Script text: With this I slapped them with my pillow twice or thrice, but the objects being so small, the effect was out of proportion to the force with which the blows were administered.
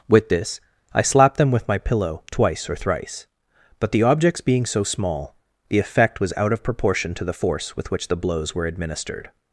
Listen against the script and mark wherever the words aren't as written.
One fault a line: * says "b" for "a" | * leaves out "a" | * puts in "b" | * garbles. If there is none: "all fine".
all fine